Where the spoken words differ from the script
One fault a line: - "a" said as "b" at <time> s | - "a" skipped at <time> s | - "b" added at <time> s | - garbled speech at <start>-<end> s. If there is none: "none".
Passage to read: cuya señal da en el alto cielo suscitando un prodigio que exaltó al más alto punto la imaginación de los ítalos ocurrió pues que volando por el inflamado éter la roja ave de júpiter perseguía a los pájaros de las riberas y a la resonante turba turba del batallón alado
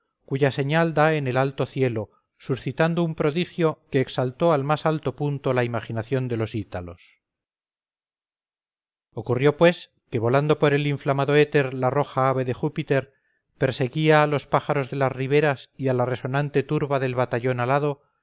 - "turba" skipped at 17.0 s